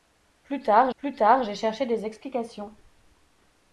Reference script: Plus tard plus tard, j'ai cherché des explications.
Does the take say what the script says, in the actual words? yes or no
yes